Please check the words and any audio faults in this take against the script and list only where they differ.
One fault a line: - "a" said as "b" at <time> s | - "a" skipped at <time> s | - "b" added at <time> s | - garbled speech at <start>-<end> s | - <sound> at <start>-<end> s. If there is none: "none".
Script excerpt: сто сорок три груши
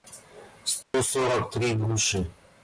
- dropout at 0.8-0.9 s